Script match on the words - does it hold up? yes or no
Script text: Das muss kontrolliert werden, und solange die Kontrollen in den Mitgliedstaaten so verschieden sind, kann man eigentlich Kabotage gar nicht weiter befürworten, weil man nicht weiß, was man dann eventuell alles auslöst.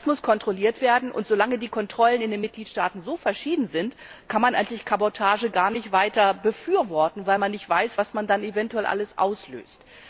yes